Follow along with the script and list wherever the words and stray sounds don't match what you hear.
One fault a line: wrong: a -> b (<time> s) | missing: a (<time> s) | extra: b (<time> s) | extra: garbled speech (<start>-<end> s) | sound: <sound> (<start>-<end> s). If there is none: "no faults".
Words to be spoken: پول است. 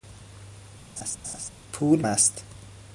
sound: laugh (1.0-1.5 s)